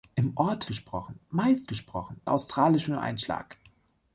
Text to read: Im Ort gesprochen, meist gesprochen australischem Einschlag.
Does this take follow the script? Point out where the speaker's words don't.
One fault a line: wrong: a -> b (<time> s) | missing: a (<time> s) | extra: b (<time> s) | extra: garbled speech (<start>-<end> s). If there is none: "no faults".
no faults